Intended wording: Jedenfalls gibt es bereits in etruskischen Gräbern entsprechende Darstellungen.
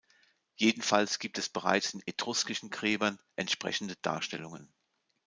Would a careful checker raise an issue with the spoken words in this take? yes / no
no